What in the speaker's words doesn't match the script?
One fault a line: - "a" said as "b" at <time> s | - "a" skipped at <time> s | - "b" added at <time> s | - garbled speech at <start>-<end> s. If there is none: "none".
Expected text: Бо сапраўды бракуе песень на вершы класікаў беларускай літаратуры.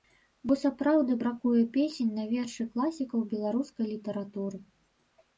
none